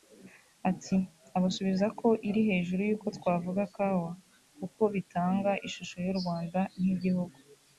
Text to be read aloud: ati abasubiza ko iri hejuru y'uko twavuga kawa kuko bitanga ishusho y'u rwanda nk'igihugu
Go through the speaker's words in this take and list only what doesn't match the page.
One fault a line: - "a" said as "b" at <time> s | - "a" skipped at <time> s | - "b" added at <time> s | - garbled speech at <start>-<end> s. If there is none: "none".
none